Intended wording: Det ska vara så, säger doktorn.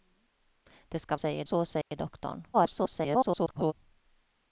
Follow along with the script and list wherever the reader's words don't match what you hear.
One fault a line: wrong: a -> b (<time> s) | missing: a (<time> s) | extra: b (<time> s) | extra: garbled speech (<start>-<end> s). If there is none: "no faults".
wrong: vara -> säger (1.1 s)
extra: garbled speech (2.5-3.7 s)